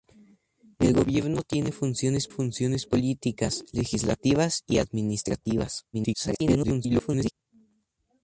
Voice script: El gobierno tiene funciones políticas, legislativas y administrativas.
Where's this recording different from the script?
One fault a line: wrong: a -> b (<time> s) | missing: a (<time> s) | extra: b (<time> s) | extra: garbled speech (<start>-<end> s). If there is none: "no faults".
extra: funciones (2.3 s)
extra: garbled speech (5.9-7.3 s)